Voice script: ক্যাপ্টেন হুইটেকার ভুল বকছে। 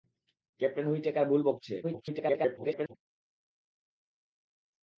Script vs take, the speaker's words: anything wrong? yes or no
yes